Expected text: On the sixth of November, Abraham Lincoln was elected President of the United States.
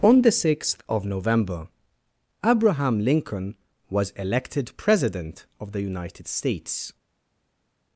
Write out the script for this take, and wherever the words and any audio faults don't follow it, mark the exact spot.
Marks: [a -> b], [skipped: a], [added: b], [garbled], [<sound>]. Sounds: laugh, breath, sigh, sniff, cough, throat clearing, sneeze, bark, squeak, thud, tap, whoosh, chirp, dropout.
On the sixth of November, Abraham Lincoln was elected President of the United States.